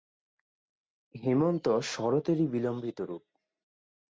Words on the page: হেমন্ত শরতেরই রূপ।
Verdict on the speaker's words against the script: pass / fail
fail